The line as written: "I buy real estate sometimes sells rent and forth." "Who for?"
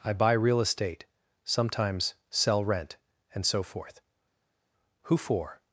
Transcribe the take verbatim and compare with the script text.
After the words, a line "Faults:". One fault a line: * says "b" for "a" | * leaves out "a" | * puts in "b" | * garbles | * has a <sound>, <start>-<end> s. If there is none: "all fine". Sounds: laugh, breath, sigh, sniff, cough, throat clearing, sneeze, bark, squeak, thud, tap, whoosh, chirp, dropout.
"I buy real estate sometimes sell rent and so forth." "Who for?"
Faults:
* says "sell" for "sells"
* puts in "so"